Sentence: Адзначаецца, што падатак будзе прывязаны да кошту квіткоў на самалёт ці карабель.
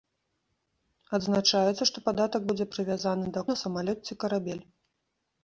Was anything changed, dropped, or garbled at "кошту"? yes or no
yes